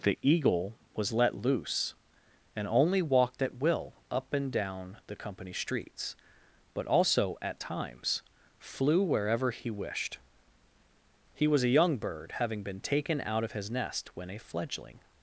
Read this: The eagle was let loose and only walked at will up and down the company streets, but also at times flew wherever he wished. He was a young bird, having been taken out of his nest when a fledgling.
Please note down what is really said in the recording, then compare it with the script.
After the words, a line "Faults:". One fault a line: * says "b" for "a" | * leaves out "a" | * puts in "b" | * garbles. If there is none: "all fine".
The eagle was let loose and only walked at will up and down the company streets, but also at times flew wherever he wished. He was a young bird, having been taken out of his nest when a fledgling.
Faults:
all fine